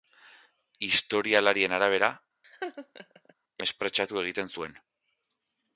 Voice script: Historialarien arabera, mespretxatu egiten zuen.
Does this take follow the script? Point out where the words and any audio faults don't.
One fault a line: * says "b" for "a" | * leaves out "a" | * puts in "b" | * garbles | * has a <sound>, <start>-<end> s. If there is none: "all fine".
* has a laugh, 2.4-3.3 s